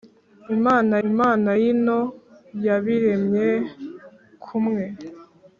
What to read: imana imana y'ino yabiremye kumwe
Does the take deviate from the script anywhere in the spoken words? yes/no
no